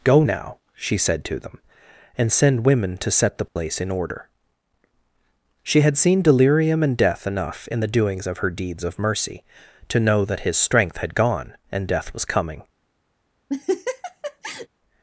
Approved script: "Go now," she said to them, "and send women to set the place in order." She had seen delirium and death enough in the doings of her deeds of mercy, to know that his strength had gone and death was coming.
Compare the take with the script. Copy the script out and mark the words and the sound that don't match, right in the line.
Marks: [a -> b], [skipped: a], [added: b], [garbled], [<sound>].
"Go now," she said to them, "and send women to set the place [dropout] in order." She had seen delirium and death enough in the doings of her deeds of mercy, to know that his strength had gone and death was coming. [laugh]